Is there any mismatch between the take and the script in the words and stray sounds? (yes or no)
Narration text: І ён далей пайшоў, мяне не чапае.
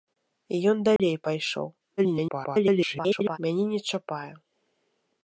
yes